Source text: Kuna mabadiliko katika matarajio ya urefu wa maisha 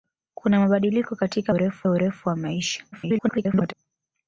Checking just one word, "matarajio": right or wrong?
wrong